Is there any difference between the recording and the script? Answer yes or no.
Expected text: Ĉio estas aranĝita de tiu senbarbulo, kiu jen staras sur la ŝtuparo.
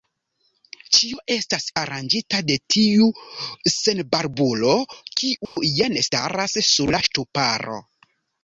no